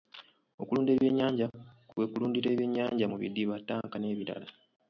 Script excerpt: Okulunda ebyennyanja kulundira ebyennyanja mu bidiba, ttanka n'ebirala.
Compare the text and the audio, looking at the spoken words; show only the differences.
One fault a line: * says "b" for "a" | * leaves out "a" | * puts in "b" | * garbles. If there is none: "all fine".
* puts in "kwe"